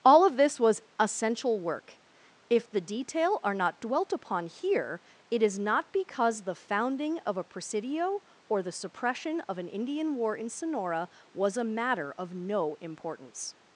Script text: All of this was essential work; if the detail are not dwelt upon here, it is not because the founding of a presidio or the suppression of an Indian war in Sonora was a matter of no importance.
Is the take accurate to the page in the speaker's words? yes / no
yes